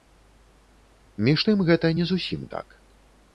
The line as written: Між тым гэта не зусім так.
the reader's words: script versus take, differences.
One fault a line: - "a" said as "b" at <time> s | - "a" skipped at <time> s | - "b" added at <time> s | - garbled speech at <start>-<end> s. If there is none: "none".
none